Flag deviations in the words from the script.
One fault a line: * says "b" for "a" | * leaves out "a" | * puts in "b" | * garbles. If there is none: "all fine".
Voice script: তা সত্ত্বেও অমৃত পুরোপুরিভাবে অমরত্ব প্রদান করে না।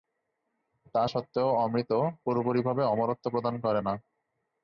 all fine